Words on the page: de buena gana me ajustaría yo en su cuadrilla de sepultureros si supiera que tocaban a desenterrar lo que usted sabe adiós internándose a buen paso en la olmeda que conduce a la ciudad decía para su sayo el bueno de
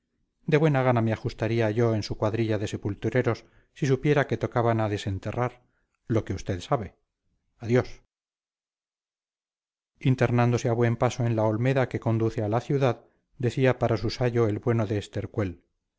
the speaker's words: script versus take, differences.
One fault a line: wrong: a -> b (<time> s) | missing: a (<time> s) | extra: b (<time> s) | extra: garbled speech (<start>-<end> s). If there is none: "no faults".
no faults